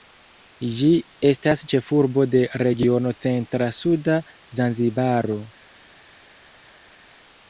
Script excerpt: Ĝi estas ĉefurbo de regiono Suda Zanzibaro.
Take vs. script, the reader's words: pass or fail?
fail